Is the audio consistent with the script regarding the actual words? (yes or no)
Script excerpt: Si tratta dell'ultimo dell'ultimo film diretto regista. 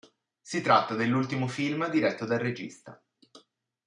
no